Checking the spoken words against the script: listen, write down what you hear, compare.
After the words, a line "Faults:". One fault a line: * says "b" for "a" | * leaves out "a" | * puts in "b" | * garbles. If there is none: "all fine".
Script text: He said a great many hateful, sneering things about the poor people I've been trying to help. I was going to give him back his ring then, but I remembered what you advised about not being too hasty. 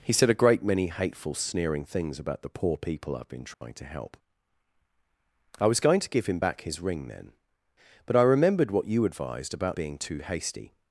He said a great many hateful, sneering things about the poor people I've been trying to help. I was going to give him back his ring then, but I remembered what you advised about being too hasty.
Faults:
* leaves out "not"